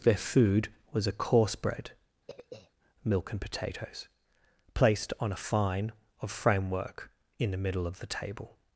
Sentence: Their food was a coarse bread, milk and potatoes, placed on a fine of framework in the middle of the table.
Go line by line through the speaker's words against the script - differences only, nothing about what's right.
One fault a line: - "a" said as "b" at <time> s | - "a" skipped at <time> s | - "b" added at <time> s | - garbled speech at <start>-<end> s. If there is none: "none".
none